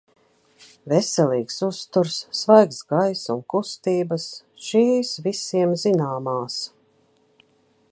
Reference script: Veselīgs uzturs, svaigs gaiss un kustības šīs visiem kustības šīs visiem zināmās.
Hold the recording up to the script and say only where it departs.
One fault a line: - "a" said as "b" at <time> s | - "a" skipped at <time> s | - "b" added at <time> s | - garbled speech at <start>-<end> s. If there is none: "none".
- "kustības šīs visiem" skipped at 5.8 s